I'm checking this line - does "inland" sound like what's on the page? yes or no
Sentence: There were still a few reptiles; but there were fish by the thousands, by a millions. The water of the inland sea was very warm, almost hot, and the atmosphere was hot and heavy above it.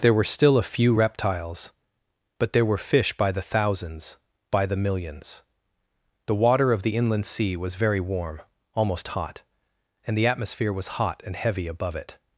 yes